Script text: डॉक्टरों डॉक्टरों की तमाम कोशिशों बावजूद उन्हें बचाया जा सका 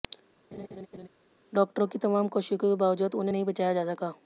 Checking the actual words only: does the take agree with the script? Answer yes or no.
no